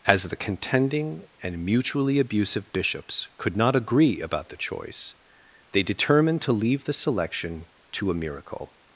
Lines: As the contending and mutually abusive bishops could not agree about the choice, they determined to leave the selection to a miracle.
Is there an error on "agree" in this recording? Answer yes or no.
no